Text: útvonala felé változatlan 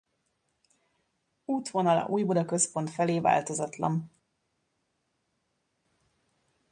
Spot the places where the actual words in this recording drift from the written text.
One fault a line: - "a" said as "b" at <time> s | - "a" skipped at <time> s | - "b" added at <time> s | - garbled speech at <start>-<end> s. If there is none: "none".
- "újbuda központ" added at 2.0 s